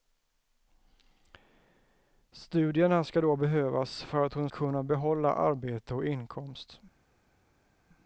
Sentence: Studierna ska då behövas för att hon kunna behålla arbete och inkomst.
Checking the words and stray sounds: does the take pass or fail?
pass